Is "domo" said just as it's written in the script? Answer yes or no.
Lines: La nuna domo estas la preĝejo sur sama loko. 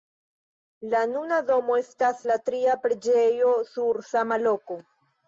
yes